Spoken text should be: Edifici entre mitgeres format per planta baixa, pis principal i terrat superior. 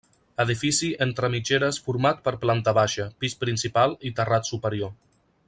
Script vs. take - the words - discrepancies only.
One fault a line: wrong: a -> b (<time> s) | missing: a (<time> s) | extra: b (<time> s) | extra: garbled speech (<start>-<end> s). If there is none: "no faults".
no faults